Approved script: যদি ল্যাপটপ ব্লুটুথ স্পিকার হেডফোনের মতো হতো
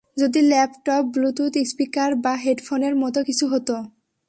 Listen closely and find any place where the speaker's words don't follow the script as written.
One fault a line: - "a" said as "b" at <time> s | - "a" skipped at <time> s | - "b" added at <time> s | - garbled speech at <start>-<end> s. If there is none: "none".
- "বা" added at 2.1 s
- "কিছু" added at 3.2 s